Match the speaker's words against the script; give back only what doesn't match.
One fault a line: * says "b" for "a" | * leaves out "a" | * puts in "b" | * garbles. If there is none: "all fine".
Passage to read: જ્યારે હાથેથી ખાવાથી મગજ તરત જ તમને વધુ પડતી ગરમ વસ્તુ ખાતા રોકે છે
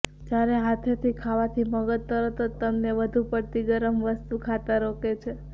all fine